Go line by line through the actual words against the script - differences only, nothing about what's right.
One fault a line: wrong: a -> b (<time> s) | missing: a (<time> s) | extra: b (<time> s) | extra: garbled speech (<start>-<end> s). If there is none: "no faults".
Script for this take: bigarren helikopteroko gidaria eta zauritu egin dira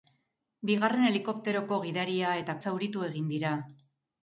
no faults